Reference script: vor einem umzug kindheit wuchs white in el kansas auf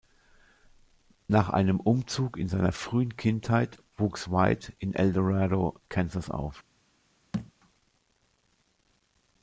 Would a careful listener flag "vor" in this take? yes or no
yes